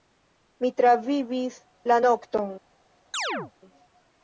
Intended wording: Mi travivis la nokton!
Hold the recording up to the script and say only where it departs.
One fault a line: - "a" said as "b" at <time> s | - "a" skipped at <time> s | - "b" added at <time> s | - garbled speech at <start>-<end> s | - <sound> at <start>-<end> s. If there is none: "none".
- chirp at 3.1-3.5 s